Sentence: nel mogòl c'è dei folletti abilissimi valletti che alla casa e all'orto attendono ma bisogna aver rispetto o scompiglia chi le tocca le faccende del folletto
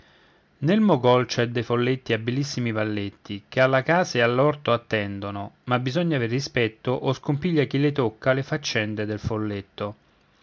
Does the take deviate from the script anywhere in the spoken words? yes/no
no